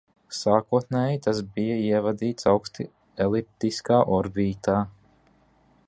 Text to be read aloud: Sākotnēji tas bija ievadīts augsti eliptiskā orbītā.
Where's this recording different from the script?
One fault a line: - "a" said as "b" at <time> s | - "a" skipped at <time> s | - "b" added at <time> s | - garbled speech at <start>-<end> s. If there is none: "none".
none